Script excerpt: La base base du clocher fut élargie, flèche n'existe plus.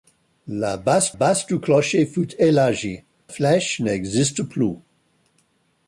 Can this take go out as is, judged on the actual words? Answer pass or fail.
pass